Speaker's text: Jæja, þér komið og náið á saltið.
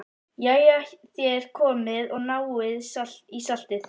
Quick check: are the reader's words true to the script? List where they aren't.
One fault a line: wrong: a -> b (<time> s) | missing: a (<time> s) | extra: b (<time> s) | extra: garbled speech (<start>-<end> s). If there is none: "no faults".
wrong: á -> í (2.7 s)